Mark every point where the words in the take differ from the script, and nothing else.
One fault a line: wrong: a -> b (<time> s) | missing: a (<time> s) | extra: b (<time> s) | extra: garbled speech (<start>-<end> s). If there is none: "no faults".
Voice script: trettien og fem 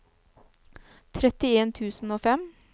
extra: tusen (1.8 s)